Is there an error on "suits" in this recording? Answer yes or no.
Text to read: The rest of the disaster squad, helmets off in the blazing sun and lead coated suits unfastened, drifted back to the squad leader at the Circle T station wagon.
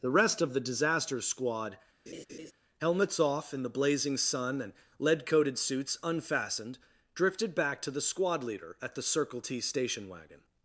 no